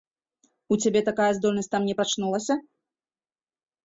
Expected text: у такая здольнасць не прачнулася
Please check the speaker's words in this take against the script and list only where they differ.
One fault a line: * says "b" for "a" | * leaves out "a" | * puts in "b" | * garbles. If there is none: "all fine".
* puts in "цябе"
* puts in "там"